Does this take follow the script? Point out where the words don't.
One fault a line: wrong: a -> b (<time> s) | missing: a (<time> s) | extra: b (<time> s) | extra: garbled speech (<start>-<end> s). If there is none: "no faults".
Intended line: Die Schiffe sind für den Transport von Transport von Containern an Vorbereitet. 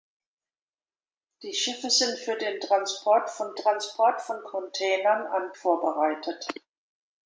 no faults